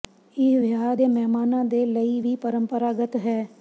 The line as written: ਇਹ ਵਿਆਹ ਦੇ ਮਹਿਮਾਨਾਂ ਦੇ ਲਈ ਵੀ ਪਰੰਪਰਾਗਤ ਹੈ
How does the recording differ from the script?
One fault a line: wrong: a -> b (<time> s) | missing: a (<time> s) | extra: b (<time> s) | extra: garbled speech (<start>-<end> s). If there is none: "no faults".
no faults